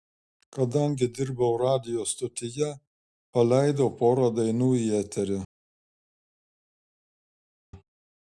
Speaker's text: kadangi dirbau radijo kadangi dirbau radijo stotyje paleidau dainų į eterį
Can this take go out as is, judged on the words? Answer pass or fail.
fail